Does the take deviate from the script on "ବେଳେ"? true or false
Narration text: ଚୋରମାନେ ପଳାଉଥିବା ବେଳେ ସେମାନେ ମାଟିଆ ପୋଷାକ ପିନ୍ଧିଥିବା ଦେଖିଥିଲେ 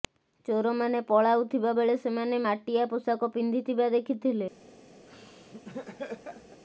false